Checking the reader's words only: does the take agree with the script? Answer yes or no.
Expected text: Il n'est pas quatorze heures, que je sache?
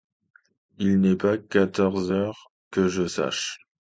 yes